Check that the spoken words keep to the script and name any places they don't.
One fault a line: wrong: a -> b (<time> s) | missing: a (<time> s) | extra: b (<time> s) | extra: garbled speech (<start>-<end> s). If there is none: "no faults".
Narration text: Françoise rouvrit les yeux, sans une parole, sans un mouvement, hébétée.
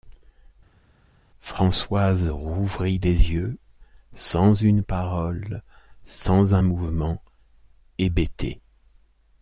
no faults